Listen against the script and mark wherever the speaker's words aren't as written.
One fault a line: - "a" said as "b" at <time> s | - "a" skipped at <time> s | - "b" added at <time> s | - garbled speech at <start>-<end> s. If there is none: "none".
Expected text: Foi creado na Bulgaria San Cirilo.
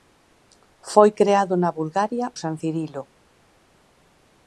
none